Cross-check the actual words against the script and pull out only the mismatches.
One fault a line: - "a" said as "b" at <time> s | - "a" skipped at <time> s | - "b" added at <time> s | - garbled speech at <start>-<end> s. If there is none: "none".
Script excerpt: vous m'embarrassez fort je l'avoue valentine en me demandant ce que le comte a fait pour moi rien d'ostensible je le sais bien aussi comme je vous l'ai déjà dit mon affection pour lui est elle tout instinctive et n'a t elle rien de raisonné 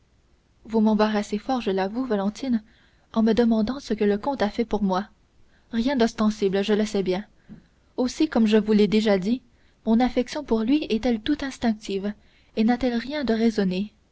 none